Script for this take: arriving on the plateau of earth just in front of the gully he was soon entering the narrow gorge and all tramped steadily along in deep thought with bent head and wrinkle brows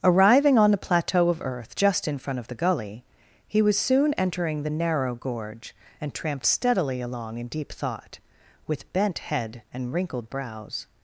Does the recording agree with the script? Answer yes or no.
no